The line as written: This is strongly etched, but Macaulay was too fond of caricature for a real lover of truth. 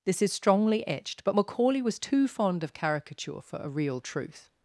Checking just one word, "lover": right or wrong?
wrong